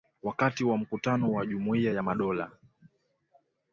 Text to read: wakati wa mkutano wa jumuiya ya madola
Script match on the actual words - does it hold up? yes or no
yes